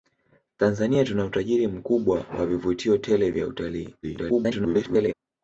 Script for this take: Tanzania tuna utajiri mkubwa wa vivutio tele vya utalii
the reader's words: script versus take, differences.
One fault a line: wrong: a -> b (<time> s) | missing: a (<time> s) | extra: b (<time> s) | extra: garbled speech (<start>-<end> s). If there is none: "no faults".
extra: garbled speech (4.0-5.1 s)